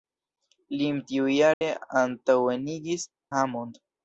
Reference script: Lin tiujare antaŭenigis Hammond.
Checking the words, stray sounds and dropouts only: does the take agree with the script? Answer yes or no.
no